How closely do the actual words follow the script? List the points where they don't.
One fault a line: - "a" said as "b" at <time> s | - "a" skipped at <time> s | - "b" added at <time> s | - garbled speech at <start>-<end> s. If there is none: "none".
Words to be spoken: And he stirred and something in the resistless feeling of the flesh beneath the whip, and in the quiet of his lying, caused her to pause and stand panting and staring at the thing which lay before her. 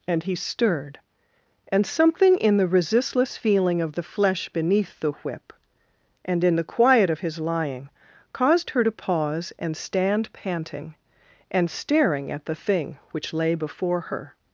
none